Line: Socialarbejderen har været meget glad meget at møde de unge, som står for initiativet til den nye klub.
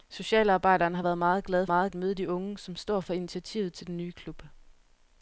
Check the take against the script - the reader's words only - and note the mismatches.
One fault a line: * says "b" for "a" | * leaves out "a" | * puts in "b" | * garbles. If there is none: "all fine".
all fine